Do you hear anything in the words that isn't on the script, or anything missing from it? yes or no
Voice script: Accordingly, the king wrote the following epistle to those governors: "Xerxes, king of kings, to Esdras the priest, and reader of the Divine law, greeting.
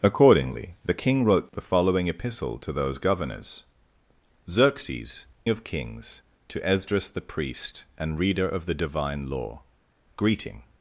yes